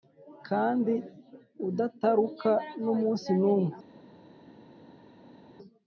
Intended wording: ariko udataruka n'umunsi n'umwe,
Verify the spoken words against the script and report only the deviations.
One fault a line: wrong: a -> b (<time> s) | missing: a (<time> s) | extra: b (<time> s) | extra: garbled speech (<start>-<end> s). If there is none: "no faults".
wrong: ariko -> kandi (0.5 s)